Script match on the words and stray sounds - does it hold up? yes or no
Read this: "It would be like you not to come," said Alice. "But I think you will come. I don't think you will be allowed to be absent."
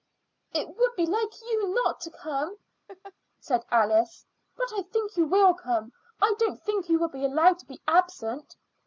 no